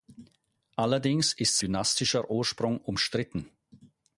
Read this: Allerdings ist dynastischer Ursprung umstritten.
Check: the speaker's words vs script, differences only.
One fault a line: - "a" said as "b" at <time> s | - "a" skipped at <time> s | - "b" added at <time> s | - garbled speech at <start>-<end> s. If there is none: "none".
none